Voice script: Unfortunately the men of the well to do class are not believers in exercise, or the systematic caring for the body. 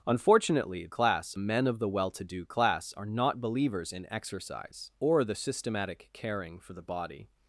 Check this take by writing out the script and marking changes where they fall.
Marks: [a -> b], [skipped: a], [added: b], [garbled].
Unfortunately [the -> class] men of the well to do class are not believers in exercise, or the systematic caring for the body.